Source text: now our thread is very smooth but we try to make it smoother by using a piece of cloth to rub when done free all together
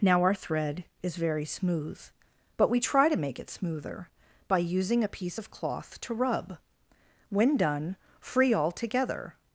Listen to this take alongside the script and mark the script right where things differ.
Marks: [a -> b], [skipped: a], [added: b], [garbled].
now our thread is very smooth but we try to make it smoother by using a piece of cloth to rub when done free all together